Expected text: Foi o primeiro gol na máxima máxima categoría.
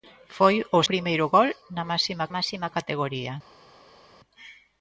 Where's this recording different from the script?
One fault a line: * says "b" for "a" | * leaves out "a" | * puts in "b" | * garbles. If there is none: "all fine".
all fine